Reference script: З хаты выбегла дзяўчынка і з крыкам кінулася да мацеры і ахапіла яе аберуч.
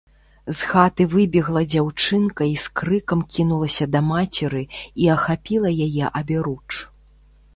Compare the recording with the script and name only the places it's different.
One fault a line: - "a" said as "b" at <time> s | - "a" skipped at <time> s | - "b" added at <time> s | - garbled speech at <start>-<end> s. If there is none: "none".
none